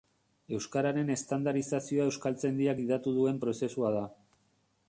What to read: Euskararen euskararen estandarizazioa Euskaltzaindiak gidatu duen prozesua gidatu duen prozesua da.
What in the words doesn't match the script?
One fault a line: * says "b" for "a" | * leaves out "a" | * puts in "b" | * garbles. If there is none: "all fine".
* leaves out "euskararen"
* leaves out "gidatu duen prozesua"